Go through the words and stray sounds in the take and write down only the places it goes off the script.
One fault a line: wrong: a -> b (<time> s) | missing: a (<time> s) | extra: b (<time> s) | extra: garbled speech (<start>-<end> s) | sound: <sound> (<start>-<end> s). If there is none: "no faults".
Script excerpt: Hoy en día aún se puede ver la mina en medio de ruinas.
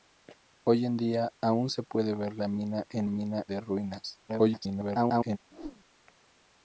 wrong: medio -> mina (3.1 s)
extra: garbled speech (4.3-5.4 s)
sound: whoosh (5.5-5.9 s)